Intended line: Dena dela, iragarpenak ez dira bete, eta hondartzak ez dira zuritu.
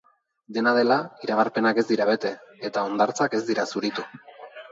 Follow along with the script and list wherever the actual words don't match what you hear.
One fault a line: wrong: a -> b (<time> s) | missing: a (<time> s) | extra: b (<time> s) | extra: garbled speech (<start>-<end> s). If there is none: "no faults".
no faults